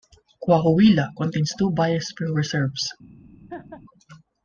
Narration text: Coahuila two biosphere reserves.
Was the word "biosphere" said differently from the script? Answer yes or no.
no